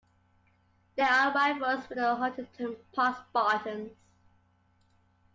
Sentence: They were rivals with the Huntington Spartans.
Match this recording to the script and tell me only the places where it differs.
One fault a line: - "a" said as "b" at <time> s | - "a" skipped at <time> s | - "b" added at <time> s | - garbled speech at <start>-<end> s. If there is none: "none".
- "were" said as "are" at 1.0 s
- "Park" added at 2.9 s